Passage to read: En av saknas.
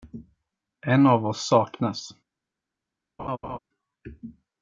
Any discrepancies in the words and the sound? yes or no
yes